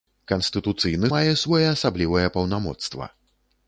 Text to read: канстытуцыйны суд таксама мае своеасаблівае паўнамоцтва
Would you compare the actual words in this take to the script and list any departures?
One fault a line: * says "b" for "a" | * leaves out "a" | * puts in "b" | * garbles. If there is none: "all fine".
* leaves out "суд таксама"